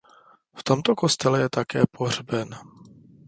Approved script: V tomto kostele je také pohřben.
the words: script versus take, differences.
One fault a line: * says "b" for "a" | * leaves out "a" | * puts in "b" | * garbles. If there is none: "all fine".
all fine